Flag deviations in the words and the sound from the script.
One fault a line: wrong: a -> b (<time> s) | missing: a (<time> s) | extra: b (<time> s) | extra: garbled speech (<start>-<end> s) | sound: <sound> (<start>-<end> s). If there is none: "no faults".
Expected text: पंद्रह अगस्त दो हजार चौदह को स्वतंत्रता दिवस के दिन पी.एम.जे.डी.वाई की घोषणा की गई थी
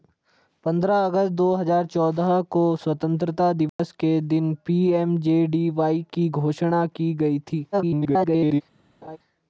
sound: dropout (3.7-3.8 s)
extra: garbled speech (7.7-8.6 s)
sound: laugh (9.0-9.2 s)